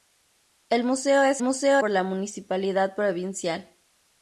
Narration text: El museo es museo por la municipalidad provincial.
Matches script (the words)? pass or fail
pass